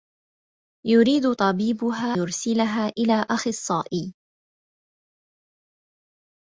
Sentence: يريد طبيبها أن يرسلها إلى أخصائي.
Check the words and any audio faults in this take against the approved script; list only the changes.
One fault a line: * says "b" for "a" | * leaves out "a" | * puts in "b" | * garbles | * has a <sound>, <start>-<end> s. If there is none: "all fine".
* leaves out "أن"